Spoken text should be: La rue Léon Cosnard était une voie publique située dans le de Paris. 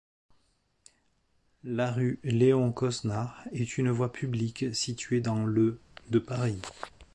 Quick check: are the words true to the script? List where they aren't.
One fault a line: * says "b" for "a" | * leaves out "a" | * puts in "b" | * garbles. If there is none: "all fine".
* says "est" for "était"